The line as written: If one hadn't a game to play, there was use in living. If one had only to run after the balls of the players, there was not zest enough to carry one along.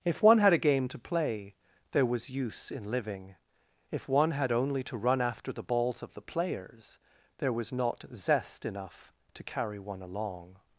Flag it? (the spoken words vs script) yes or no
yes